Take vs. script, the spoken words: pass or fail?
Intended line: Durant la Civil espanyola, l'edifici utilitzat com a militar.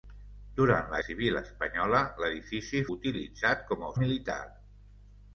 pass